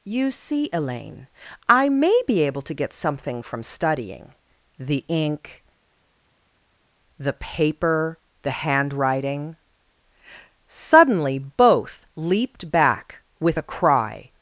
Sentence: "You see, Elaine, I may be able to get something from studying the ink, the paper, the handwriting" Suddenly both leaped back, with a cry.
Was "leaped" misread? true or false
false